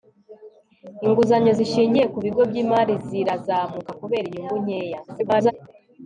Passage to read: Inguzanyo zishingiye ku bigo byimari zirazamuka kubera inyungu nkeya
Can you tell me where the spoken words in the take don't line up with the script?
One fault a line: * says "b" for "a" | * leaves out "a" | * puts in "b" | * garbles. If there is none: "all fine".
* garbles